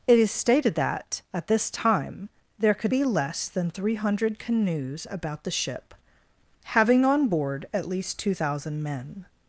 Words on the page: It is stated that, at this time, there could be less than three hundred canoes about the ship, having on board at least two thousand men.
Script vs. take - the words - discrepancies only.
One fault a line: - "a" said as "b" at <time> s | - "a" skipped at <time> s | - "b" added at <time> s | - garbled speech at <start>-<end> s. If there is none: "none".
none